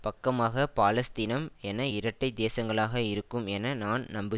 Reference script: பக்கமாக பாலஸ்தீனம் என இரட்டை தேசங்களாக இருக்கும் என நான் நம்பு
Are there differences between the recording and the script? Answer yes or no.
no